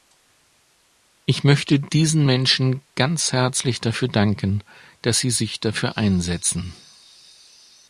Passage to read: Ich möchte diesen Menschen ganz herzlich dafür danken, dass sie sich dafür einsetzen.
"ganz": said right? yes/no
yes